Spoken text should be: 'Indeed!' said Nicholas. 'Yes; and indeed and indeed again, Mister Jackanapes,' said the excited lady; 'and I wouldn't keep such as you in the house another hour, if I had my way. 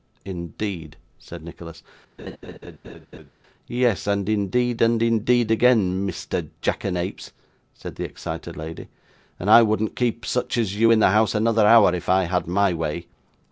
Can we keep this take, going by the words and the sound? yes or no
no